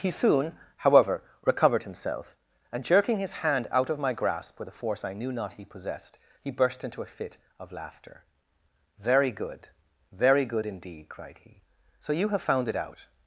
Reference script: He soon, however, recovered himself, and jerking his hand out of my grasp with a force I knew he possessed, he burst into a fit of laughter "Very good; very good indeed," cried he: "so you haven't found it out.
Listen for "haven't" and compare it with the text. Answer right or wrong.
wrong